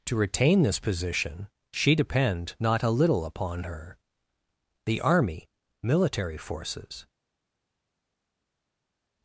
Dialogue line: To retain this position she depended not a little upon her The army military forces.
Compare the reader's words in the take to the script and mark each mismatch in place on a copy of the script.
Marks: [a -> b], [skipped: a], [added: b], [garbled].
To retain this position she [depended -> depend] not a little upon her The army military forces.